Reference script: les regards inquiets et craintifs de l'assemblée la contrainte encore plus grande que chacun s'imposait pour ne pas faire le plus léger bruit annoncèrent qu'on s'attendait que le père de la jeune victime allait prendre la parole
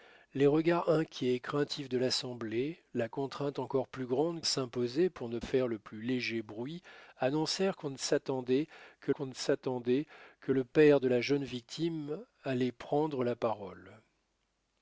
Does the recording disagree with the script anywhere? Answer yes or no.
yes